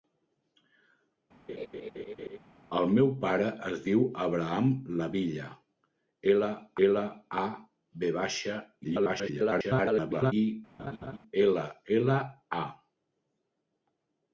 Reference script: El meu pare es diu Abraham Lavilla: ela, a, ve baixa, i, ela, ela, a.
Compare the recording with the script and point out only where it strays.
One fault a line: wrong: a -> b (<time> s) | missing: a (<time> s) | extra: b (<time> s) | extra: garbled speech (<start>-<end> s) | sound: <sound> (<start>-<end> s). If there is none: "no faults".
sound: laugh (1.5-2.4 s)
extra: ela (6.9 s)
extra: garbled speech (8.8-10.3 s)
sound: laugh (10.8-11.2 s)